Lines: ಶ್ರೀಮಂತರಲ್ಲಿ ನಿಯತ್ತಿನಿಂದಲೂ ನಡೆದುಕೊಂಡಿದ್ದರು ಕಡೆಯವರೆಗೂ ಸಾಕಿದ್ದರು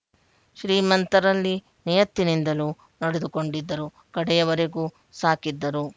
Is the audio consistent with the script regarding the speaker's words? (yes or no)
yes